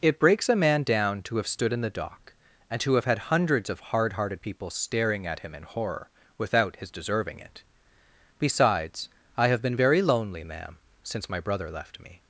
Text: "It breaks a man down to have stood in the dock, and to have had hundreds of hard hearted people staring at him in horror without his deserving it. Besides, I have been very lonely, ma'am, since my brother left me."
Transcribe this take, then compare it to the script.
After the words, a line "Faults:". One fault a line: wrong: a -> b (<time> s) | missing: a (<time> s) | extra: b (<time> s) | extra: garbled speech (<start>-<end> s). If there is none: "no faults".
"It breaks a man down to have stood in the dock, and to have had hundreds of hard hearted people staring at him in horror without his deserving it. Besides, I have been very lonely, ma'am, since my brother left me."
Faults:
no faults